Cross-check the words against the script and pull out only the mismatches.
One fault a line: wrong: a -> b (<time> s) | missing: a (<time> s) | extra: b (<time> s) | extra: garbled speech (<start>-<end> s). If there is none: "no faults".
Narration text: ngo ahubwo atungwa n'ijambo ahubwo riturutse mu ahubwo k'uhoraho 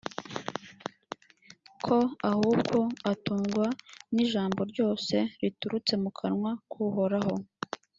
wrong: ngo -> ko (1.9 s)
wrong: ahubwo -> ryose (4.7 s)
wrong: ahubwo -> kanwa (6.2 s)